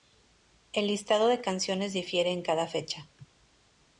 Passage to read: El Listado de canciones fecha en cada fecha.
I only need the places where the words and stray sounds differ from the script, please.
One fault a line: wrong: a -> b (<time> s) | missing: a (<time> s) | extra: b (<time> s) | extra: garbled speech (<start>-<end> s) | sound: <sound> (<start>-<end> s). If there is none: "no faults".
wrong: fecha -> difiere (1.9 s)